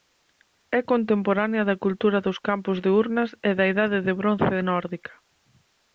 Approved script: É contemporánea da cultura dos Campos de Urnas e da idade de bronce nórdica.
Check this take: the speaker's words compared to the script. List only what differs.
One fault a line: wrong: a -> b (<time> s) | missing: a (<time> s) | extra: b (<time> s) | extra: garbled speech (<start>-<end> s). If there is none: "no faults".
no faults